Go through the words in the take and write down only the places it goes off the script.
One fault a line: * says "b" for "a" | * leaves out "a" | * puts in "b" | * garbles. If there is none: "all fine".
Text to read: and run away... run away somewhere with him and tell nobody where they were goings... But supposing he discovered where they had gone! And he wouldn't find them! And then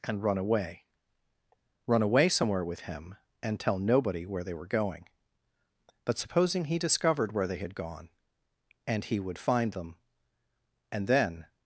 * says "going" for "goings"
* says "would" for "wouldn't"